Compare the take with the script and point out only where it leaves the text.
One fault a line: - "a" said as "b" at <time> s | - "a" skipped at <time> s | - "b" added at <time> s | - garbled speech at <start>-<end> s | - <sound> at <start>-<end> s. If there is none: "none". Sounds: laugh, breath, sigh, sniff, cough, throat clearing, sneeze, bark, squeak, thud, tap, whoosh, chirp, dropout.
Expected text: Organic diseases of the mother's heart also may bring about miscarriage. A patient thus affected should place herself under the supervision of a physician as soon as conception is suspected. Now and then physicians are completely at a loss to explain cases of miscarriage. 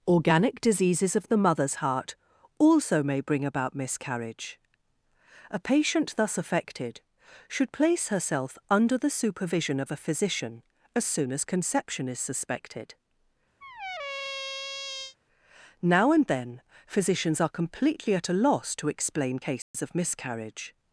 - squeak at 13.6-15.2 s
- dropout at 19.6-19.7 s